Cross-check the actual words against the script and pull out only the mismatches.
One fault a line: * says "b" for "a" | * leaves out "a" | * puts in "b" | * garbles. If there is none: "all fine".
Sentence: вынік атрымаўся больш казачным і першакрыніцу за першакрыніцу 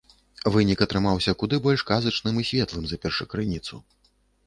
* puts in "куды"
* says "светлым" for "першакрыніцу"